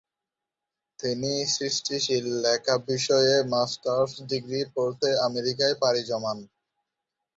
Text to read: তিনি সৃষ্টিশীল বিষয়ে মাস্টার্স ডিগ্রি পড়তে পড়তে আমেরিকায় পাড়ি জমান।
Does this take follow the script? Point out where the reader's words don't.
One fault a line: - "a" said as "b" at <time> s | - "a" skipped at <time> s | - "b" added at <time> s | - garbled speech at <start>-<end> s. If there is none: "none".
- "লেখা" added at 2.4 s
- "পড়তে" skipped at 5.1 s